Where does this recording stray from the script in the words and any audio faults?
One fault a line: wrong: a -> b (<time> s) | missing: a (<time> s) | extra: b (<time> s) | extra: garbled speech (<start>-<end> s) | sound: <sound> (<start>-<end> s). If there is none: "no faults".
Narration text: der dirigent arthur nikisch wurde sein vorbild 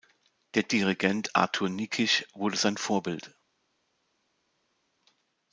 no faults